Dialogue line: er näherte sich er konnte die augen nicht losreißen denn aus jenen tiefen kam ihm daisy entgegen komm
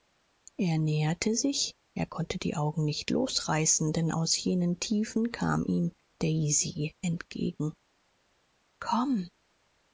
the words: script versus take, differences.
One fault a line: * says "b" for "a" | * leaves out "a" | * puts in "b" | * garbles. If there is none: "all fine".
all fine